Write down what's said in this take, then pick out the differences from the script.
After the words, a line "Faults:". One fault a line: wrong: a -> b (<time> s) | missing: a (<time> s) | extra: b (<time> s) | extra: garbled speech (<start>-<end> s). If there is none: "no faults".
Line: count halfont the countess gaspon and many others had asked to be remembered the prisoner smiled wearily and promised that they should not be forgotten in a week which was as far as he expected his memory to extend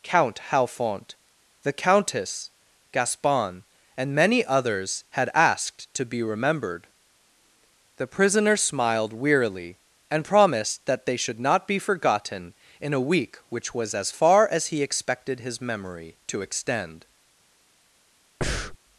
count halfont the countess gaspon and many others had asked to be remembered the prisoner smiled wearily and promised that they should not be forgotten in a week which was as far as he expected his memory to extend
Faults:
no faults